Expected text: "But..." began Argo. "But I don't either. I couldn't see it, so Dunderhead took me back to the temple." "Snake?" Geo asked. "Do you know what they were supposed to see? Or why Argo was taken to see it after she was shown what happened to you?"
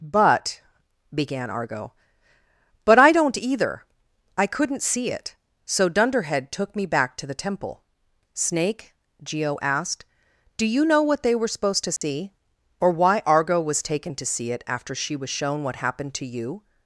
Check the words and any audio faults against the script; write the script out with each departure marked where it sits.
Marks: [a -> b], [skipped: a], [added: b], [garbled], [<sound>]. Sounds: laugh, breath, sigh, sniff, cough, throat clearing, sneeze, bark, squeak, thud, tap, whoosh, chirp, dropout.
"But..." began Argo. "But I don't either. I couldn't see it, so Dunderhead took me back to the temple." "Snake?" Geo asked. "Do you know what they were supposed to see? [dropout] Or why Argo was taken to see it after she was shown what happened to you?"